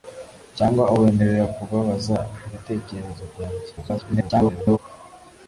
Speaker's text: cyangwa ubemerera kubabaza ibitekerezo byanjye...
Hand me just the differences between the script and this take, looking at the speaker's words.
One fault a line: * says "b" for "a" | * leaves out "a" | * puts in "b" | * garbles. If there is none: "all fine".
* garbles